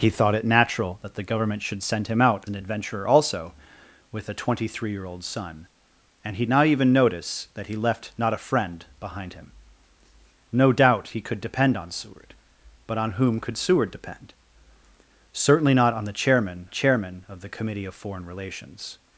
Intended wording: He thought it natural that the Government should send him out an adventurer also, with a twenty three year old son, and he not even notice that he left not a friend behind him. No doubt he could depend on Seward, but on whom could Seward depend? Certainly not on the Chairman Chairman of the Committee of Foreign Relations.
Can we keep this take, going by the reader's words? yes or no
yes